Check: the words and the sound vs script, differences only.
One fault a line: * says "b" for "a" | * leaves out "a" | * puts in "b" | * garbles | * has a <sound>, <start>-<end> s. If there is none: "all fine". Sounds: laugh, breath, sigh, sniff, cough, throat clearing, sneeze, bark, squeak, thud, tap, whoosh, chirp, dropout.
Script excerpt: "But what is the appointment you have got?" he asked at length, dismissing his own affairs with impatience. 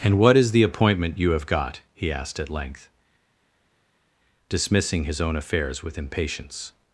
* says "And" for "But"